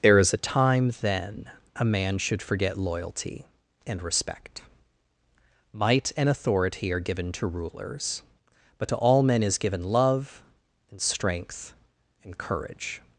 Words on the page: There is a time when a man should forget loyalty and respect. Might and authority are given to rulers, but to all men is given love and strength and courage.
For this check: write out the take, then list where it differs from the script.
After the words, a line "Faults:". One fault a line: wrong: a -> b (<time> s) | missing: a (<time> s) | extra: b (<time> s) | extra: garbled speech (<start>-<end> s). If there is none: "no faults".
There is a time then a man should forget loyalty and respect. Might and authority are given to rulers, but to all men is given love and strength and courage.
Faults:
wrong: when -> then (1.0 s)